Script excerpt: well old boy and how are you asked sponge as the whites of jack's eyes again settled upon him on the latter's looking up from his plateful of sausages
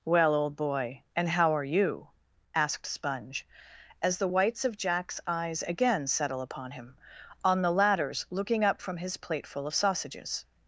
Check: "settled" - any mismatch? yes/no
yes